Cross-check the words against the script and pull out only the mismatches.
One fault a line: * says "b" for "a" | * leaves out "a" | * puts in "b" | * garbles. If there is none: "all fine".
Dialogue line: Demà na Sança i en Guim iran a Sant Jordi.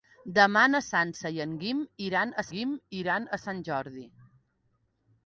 * puts in "Guim iran a"